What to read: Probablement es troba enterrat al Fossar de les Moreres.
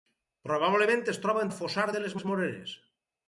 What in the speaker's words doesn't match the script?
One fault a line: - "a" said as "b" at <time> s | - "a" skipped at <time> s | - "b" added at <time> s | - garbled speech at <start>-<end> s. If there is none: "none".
- "enterrat" skipped at 1.4 s
- "les" added at 2.2 s